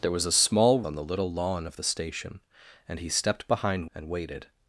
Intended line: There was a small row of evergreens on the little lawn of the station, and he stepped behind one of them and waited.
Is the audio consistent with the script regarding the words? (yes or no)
no